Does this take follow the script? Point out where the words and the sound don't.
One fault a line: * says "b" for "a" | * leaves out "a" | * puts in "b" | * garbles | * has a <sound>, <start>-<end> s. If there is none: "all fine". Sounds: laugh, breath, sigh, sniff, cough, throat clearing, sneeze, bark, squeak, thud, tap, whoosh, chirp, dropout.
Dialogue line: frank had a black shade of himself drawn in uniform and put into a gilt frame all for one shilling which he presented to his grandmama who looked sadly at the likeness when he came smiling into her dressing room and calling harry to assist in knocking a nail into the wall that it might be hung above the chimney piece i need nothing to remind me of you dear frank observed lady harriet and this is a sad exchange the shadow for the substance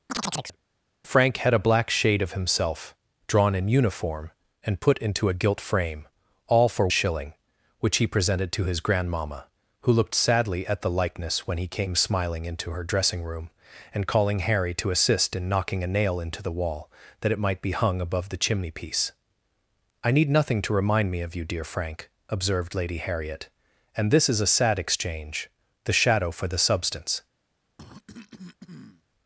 * has a chirp, 0.1-0.6 s
* leaves out "one"
* has a cough, 27.8-29.0 s